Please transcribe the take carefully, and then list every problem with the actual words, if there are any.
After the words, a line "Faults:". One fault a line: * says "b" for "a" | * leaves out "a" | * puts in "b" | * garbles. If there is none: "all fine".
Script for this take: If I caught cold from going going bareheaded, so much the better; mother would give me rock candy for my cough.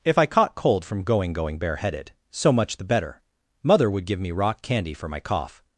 If I caught cold from going going bareheaded, so much the better; mother would give me rock candy for my cough.
Faults:
all fine